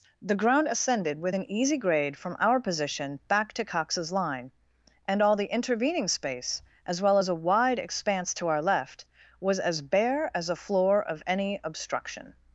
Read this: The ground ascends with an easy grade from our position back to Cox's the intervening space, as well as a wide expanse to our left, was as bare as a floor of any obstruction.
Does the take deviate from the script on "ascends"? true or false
true